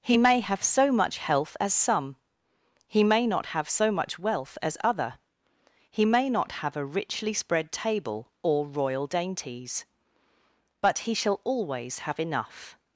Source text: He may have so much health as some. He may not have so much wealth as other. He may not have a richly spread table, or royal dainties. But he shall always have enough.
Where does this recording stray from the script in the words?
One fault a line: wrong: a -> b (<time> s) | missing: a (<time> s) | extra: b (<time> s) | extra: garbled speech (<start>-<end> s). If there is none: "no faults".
no faults